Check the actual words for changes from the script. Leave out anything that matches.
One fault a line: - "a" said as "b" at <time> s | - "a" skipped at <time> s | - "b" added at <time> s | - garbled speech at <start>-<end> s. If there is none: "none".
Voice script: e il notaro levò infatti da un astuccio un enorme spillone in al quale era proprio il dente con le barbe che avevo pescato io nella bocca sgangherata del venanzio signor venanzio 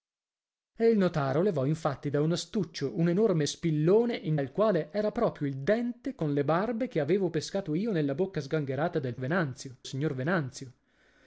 none